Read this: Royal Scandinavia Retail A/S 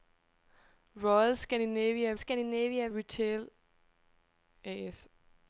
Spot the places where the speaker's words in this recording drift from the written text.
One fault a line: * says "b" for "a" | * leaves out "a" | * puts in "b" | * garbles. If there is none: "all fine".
* puts in "Scandinavia"